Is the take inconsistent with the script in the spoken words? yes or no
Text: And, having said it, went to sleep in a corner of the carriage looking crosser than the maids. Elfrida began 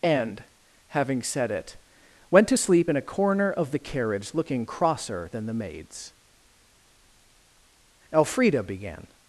no